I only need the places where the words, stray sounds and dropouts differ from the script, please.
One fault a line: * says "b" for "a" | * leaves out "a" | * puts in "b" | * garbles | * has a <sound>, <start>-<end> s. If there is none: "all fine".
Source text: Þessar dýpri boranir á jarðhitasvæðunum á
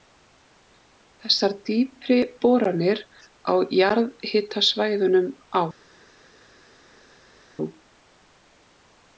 all fine